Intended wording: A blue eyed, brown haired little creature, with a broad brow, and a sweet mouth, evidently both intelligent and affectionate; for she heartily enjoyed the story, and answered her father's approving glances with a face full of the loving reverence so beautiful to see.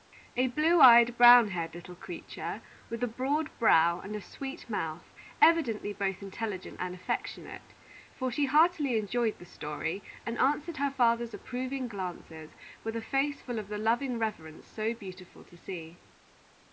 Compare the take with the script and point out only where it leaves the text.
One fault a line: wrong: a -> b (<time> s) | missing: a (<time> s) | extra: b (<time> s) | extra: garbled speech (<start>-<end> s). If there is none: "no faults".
no faults